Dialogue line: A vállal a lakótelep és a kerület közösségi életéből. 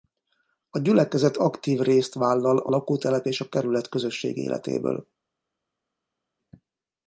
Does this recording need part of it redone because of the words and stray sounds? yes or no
yes